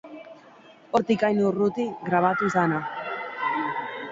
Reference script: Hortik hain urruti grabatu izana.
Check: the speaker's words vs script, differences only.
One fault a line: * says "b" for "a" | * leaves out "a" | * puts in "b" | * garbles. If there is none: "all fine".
all fine